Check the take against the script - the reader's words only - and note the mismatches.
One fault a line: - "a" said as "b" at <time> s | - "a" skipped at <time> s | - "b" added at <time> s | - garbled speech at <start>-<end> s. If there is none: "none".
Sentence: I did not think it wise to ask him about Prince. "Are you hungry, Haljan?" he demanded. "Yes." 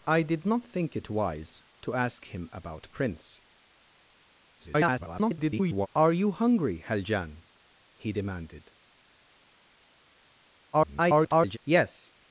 - garbled speech at 4.6-5.9 s
- garbled speech at 10.7-11.6 s